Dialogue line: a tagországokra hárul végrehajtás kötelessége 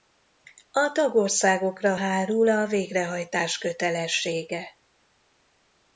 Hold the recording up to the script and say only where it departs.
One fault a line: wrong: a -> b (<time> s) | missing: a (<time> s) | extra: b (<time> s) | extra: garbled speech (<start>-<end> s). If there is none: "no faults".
extra: a (2.5 s)